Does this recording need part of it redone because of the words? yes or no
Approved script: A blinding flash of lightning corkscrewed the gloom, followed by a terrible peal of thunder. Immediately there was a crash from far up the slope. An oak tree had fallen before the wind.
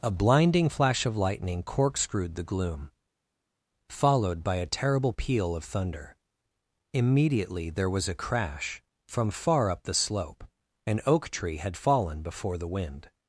no